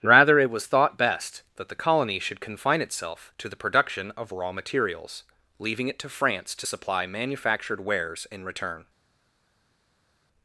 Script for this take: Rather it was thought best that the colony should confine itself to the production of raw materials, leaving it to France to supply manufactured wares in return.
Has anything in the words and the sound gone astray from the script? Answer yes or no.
no